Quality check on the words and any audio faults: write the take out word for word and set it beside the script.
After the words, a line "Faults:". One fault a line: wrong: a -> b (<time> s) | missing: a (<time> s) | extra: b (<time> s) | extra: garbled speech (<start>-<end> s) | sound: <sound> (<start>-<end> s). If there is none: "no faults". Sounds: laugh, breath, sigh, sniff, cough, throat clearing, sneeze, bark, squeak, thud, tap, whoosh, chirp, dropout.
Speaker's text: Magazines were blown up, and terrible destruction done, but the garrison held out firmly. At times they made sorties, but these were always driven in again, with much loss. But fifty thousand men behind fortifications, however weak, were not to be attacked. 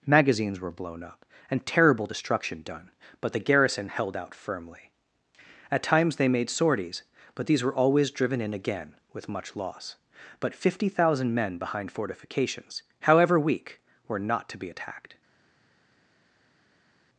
Magazines were blown up, and terrible destruction done, but the garrison held out firmly. At times they made sorties, but these were always driven in again, with much loss. But fifty thousand men behind fortifications, however weak, were not to be attacked.
Faults:
no faults